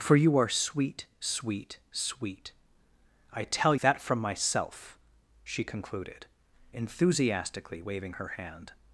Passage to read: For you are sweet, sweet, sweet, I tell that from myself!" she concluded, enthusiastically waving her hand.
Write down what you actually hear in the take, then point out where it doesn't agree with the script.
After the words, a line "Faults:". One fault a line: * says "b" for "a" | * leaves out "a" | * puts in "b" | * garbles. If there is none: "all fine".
For you are sweet, sweet, sweet, I tell that from myself!" she concluded, enthusiastically waving her hand.
Faults:
all fine